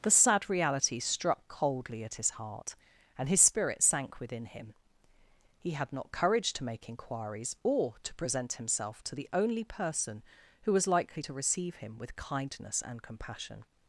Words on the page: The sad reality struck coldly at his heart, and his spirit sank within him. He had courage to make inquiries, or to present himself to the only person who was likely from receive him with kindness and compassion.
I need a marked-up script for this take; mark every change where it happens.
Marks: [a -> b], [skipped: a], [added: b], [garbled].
The sad reality struck coldly at his heart, and his spirit sank within him. He had [added: not] courage to make inquiries, or to present himself to the only person who was likely [from -> to] receive him with kindness and compassion.